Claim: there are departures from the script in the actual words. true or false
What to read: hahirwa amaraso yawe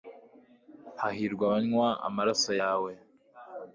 true